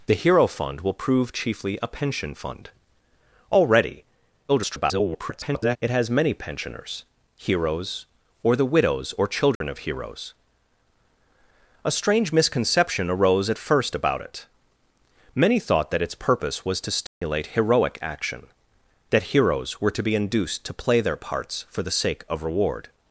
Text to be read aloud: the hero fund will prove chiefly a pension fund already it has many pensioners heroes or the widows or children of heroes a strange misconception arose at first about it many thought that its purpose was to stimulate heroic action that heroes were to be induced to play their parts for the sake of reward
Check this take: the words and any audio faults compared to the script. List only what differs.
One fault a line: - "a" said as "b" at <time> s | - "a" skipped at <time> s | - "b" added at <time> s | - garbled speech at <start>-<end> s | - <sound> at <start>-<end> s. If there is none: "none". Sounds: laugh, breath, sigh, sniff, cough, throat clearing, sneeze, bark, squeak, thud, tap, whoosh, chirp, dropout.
- garbled speech at 4.5-5.8 s
- dropout at 9.6-9.6 s
- dropout at 17.1-17.2 s